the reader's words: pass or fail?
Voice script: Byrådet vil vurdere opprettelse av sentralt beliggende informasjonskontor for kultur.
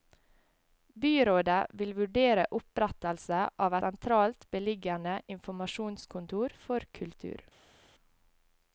pass